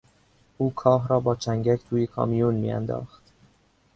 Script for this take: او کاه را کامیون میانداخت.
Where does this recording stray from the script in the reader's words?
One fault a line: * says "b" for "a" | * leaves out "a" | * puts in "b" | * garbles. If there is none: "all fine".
* puts in "با چنگک توی"